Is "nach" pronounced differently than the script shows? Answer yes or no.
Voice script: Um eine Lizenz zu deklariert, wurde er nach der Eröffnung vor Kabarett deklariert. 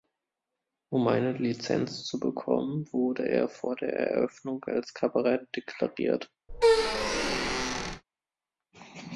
yes